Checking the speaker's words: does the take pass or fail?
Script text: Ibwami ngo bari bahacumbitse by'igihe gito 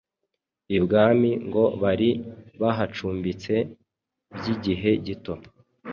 pass